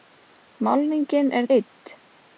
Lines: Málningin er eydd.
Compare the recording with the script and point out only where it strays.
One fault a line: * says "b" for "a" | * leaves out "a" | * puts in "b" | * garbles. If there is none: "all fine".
all fine